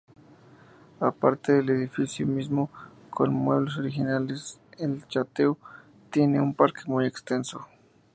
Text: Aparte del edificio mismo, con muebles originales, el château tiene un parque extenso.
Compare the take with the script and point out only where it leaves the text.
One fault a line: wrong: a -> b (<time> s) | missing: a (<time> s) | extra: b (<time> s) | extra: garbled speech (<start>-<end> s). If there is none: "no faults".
extra: muy (6.8 s)